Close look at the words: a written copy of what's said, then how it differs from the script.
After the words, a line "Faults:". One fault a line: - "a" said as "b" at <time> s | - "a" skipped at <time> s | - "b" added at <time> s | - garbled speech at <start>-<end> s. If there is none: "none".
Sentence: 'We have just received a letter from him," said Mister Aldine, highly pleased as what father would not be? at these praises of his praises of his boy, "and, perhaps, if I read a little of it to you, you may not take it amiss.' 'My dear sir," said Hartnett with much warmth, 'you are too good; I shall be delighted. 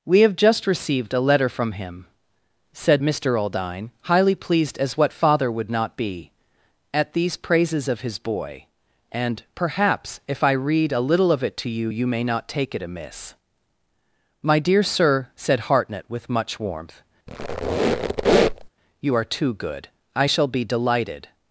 'We have just received a letter from him," said Mister Aldine, highly pleased as what father would not be? at these praises of his boy, "and, perhaps, if I read a little of it to you, you may not take it amiss.' 'My dear sir," said Hartnett with much warmth, 'you are too good; I shall be delighted.
Faults:
- "praises of his" skipped at 8.2 s